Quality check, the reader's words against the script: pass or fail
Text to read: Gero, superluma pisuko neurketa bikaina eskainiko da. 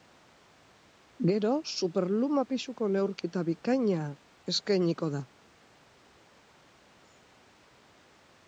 pass